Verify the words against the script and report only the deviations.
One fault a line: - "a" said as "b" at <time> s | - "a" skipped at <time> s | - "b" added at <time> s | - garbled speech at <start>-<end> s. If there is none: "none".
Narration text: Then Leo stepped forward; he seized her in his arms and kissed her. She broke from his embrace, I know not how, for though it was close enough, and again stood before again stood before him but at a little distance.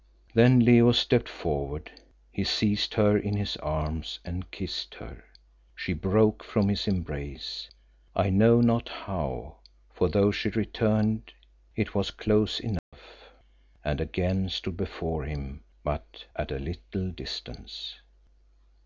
- "she returned" added at 10.3 s
- "again stood before" skipped at 15.2 s